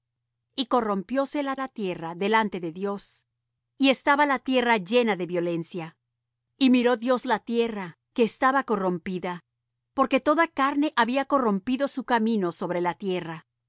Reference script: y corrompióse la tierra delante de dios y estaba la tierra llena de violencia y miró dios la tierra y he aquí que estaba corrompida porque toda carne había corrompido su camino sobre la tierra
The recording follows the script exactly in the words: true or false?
false